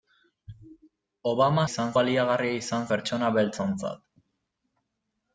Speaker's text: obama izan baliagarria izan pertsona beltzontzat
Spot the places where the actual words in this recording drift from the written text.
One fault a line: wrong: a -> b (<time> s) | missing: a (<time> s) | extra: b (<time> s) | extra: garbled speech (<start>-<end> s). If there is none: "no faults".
no faults